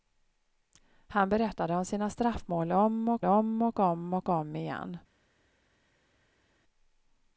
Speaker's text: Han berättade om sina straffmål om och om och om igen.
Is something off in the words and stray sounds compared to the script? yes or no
yes